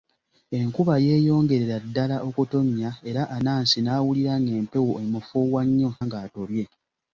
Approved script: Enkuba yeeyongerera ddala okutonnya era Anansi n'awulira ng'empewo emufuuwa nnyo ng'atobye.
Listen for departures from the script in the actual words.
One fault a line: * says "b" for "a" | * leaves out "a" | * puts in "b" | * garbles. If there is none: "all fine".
all fine